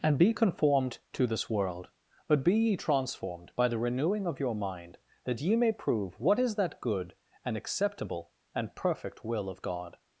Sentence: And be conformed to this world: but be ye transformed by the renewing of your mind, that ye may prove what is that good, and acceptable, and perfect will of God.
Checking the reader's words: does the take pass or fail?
pass